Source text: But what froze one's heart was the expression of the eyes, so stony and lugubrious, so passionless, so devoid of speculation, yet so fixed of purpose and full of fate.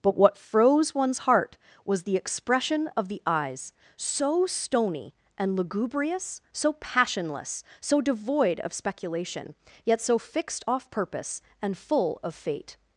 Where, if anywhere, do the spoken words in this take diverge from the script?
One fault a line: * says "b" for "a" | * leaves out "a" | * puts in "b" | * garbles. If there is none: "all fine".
* says "off" for "of"